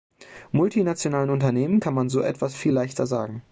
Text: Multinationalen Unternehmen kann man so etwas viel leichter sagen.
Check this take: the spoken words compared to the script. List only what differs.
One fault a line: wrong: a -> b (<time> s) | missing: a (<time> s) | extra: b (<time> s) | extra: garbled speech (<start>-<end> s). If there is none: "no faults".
no faults